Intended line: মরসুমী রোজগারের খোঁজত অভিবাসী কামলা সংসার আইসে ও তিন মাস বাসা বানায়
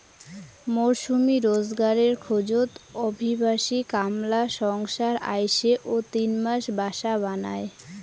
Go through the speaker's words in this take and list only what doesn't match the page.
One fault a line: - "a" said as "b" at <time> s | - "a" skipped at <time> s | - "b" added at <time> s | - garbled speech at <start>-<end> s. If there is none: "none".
none